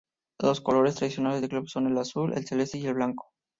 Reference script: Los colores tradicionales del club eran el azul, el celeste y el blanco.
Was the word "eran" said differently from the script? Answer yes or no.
yes